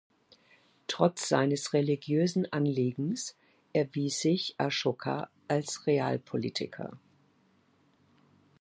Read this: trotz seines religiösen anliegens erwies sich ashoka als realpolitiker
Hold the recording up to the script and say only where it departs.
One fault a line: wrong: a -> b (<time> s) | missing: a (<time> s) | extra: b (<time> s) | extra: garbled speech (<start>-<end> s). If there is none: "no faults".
no faults